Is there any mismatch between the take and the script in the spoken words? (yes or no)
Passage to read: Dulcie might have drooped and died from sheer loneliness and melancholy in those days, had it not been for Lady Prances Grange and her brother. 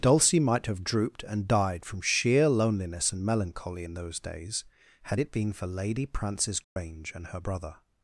yes